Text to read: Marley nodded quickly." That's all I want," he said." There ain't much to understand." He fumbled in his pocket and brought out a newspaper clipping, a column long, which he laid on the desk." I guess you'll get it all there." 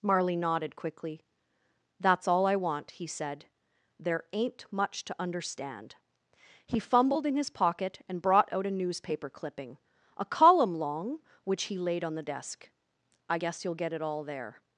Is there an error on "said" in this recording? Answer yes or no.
no